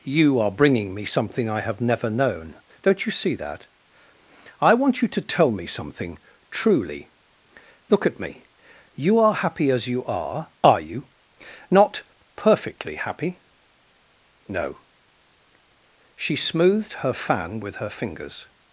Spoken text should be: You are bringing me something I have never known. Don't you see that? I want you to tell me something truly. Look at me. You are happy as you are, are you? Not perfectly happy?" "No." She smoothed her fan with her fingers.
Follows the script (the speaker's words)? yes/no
yes